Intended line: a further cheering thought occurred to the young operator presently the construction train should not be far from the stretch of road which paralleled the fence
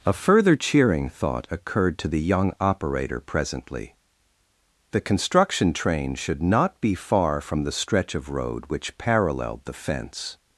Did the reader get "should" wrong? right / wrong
right